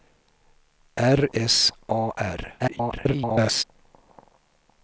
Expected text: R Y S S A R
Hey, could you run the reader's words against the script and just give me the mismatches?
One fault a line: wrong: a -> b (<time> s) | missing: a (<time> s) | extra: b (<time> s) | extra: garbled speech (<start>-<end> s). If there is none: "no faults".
missing: Y S (1.3 s)
extra: garbled speech (2.6-3.6 s)